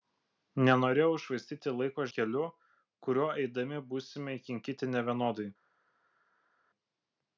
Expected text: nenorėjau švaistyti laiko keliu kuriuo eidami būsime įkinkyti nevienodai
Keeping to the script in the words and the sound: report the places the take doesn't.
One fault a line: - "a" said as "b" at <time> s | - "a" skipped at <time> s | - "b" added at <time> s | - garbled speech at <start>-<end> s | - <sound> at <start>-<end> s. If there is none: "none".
none